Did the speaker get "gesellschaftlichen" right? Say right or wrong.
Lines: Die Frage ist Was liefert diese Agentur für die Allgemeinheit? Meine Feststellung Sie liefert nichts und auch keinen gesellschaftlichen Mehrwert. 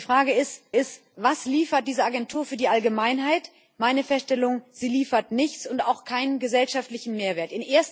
right